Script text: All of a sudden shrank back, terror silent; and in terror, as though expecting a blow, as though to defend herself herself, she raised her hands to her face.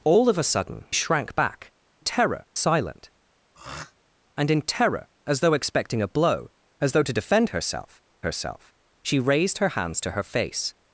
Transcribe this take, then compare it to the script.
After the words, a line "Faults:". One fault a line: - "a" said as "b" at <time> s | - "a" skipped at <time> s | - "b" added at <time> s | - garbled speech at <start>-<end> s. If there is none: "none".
All of a sudden shrank back, terror silent; and in terror, as though expecting a blow, as though to defend herself herself, she raised her hands to her face.
Faults:
none